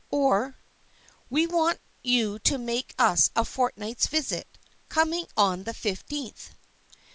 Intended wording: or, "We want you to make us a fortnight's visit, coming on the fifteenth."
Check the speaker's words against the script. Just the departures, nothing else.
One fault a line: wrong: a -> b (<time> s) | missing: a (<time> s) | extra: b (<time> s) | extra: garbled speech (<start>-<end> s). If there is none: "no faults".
no faults